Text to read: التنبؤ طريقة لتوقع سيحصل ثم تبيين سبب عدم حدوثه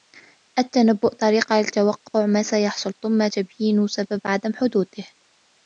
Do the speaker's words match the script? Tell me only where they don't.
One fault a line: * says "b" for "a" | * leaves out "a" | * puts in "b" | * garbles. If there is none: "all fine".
* puts in "ما"